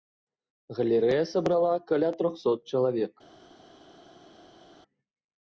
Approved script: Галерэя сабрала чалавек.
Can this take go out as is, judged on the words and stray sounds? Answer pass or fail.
fail